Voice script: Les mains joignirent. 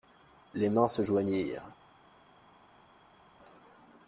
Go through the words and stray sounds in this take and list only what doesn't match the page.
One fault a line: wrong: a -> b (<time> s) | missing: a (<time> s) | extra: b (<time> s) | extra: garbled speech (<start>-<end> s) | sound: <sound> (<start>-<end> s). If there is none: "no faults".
extra: se (0.9 s)